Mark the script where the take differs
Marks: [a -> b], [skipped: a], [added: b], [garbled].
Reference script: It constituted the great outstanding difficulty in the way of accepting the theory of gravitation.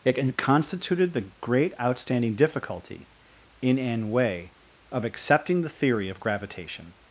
It constituted the great outstanding difficulty in [the -> an] way of accepting the theory of gravitation.